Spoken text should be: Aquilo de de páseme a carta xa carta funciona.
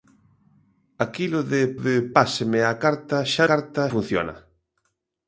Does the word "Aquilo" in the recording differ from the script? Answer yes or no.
no